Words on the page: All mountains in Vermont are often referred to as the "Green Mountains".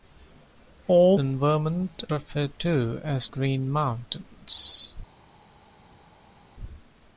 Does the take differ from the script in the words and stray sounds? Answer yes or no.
yes